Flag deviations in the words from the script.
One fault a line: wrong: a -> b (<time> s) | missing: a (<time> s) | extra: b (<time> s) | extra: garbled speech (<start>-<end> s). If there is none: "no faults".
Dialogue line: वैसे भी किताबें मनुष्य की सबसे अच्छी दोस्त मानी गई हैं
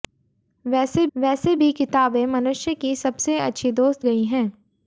extra: वैसे (1.2 s)
missing: मानी (4.1 s)